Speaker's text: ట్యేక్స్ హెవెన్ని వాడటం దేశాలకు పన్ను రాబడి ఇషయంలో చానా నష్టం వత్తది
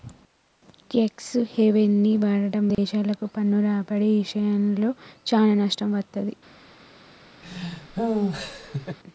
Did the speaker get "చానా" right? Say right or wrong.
right